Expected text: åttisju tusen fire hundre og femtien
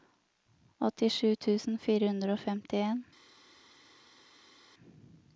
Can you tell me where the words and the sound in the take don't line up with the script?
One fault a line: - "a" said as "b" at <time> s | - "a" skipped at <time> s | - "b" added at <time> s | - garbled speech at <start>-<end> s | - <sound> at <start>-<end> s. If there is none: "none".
none